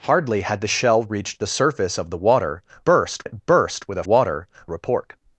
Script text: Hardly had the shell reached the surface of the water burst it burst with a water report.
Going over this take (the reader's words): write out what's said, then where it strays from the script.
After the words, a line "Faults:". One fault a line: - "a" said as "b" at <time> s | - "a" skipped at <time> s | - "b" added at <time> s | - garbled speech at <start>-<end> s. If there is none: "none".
Hardly had the shell reached the surface of the water burst it burst with a water report.
Faults:
none